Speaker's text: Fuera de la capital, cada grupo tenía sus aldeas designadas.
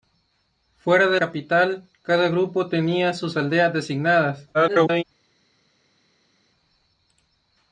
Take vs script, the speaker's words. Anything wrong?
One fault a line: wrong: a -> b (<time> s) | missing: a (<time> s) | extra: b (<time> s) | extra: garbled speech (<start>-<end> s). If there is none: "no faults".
missing: la (1.2 s)
extra: garbled speech (4.5-5.0 s)